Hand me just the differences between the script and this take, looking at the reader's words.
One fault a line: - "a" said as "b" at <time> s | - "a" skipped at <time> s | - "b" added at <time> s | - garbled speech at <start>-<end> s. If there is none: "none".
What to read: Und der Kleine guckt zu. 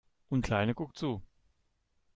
- "der" skipped at 0.5 s